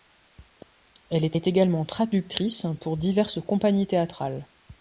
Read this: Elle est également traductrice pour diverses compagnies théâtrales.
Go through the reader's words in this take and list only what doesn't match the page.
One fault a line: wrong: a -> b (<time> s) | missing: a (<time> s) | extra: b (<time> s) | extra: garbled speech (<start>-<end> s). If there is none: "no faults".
extra: est (1.3 s)